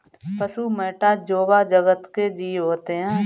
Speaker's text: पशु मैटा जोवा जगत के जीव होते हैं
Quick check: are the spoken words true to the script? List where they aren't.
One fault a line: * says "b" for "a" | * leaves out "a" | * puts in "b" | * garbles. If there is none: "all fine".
all fine